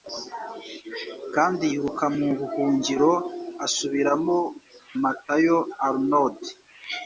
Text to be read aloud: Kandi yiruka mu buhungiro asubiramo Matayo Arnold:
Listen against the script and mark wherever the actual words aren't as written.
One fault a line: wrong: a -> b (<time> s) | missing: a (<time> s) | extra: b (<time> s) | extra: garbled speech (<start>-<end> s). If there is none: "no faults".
no faults